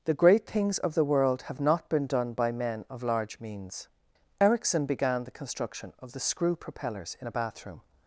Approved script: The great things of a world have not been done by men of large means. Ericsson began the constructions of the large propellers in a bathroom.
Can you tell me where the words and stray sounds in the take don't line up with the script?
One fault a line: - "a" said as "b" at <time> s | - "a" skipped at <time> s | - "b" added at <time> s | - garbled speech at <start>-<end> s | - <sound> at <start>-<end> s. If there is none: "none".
- "a" said as "the" at 0.9 s
- "constructions" said as "construction" at 5.4 s
- "large" said as "screw" at 6.2 s